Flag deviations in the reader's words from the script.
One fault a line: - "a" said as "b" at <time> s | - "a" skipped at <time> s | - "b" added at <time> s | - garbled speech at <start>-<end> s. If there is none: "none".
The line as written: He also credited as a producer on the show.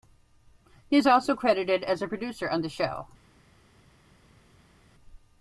- "is" added at 1.0 s